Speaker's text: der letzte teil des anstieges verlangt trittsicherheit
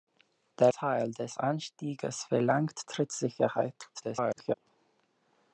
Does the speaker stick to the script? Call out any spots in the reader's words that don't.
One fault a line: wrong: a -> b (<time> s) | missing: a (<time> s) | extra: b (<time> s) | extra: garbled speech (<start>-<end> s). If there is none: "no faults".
missing: letzte (0.7 s)
extra: garbled speech (3.9-4.5 s)